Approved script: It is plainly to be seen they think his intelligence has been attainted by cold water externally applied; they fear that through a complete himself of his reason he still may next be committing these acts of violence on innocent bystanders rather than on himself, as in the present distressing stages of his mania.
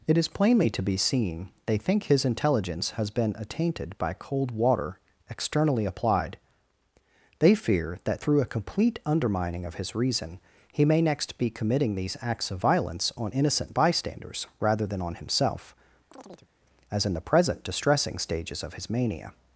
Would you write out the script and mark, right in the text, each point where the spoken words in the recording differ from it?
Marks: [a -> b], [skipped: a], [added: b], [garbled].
It is plainly to be seen they think his intelligence has been attainted by cold water externally applied; they fear that through a complete [himself -> undermining] of his reason he [skipped: still] may next be committing these acts of violence on innocent bystanders rather than on himself, as in the present distressing stages of his mania.